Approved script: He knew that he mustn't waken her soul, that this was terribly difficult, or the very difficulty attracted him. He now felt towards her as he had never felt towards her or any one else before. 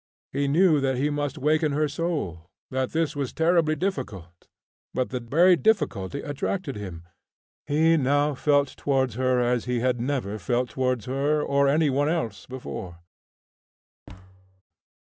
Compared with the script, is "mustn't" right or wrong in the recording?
wrong